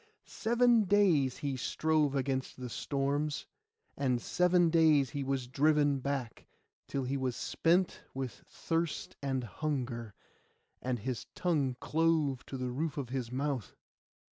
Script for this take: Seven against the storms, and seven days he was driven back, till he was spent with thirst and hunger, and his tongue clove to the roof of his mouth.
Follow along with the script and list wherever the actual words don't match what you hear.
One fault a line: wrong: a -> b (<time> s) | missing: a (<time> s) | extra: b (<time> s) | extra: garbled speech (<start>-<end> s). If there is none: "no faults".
extra: days he strove (0.8 s)